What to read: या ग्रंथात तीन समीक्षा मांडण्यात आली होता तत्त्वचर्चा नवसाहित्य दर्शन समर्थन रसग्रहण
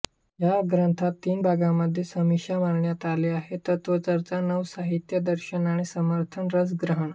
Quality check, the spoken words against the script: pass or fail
fail